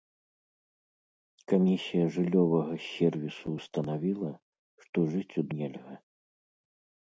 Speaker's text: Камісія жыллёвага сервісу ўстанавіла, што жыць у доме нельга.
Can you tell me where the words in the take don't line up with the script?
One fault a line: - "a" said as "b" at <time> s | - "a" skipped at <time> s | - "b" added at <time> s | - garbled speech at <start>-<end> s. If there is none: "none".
- "доме" skipped at 5.5 s